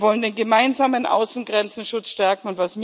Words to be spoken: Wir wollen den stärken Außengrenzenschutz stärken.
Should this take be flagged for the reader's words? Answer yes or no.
yes